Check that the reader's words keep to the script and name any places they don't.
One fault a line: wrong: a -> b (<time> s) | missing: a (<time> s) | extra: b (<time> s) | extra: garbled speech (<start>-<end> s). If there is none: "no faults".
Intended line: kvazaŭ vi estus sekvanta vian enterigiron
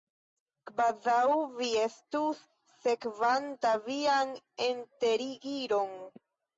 no faults